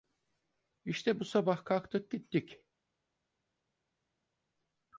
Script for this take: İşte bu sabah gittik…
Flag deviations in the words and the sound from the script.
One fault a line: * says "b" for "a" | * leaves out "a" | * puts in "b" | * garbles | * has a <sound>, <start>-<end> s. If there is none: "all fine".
* puts in "kalktık"